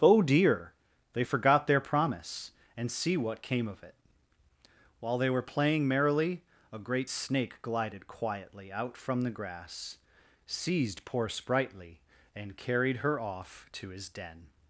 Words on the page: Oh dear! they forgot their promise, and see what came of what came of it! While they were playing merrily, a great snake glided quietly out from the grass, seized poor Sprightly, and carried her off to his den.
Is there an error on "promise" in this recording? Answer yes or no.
no